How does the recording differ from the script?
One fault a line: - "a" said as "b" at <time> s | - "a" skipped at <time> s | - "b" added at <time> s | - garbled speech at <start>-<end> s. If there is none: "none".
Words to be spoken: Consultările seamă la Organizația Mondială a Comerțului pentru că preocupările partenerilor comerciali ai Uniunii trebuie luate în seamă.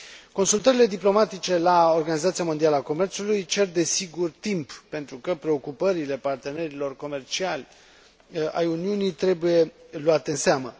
- "seamă" said as "diplomatice" at 0.8 s
- "cer desigur timp" added at 3.5 s